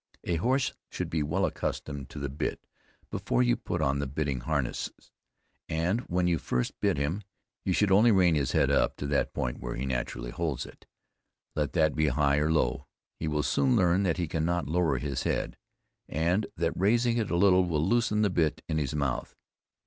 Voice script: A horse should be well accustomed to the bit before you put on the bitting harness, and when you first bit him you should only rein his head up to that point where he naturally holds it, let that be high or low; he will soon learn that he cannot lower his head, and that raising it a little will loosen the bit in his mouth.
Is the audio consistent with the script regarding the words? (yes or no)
yes